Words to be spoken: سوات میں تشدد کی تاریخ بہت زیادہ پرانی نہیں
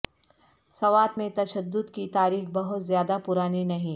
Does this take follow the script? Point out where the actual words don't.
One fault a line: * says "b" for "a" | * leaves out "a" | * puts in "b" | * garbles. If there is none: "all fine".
all fine